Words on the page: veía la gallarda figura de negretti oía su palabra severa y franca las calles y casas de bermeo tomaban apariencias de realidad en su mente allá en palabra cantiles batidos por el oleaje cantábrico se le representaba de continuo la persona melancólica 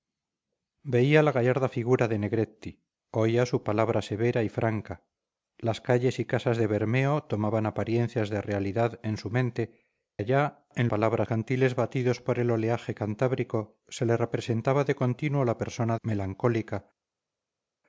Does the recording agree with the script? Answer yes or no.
yes